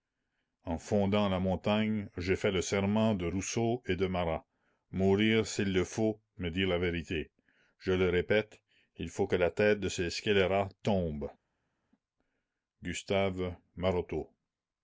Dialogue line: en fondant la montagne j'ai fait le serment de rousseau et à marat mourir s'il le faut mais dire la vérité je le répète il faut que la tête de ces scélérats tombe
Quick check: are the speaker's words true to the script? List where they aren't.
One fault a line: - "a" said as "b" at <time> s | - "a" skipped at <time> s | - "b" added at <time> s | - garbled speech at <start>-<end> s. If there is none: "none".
- "à" said as "de" at 4.0 s